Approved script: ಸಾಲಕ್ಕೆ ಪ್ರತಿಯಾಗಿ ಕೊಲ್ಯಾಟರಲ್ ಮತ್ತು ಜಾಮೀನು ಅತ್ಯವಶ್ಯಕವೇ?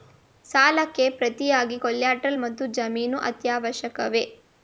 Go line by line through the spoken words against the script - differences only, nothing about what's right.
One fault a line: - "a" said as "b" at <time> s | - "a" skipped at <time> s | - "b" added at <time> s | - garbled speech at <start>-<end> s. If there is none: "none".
none